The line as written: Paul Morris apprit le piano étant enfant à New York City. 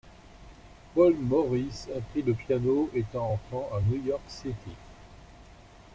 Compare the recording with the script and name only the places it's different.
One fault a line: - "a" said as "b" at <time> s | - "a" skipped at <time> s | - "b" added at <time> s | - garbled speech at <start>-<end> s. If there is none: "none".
none